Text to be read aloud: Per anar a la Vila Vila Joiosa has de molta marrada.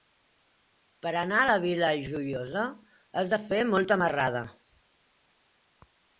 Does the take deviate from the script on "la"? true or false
false